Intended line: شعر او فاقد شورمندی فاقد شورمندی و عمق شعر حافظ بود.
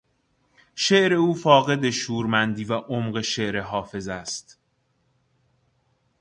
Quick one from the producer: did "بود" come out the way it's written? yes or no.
no